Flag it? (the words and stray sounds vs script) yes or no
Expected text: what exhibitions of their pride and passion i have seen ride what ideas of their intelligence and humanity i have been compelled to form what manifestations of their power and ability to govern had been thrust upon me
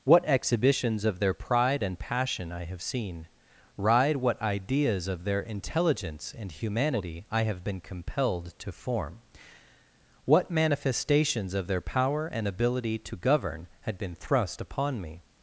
no